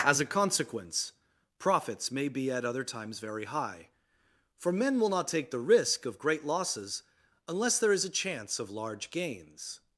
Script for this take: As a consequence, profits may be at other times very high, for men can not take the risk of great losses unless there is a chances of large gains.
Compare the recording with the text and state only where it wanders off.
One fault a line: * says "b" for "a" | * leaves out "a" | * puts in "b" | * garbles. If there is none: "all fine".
* says "will" for "can"
* says "chance" for "chances"